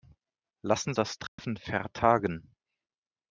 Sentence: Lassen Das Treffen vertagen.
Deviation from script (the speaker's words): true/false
false